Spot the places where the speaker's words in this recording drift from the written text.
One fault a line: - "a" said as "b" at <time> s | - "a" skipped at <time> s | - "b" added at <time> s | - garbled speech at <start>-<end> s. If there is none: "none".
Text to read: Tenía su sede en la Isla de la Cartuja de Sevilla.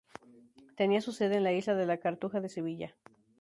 none